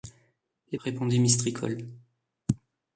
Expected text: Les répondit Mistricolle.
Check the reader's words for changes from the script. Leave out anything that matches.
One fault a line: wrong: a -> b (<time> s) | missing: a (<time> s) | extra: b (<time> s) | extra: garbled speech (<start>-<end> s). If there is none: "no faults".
no faults